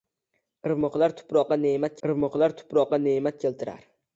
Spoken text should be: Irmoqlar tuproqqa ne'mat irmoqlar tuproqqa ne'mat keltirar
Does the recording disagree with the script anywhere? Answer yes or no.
no